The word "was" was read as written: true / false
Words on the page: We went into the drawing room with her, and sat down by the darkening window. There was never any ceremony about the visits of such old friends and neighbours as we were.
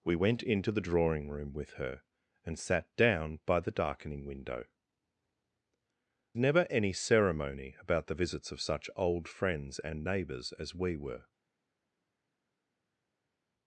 false